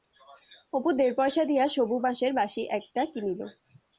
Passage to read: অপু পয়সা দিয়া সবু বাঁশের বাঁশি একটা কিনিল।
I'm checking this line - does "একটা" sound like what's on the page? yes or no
yes